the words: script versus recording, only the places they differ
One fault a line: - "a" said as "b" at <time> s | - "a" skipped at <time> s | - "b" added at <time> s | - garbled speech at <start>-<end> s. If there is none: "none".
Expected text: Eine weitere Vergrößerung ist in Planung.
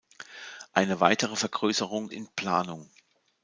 - "ist" skipped at 2.1 s